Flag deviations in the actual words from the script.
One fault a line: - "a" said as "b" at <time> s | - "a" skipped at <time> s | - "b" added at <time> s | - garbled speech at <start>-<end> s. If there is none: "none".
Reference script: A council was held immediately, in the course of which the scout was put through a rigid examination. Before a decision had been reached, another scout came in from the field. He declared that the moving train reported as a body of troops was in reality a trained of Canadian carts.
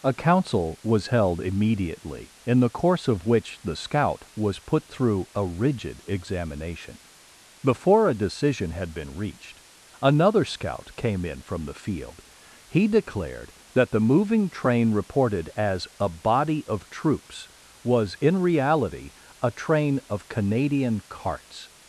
- "trained" said as "train" at 19.5 s